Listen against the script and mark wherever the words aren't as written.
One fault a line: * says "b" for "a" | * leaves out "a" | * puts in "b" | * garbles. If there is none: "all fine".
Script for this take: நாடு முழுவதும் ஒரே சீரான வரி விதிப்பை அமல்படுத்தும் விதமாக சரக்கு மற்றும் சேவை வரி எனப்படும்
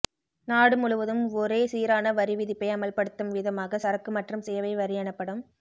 all fine